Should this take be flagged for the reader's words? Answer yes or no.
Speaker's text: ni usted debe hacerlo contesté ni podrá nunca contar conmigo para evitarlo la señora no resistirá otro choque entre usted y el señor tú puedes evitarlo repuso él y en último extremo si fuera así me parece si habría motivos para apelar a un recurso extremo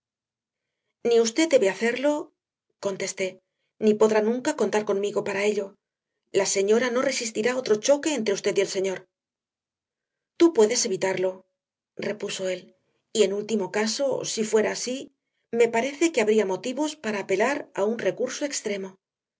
yes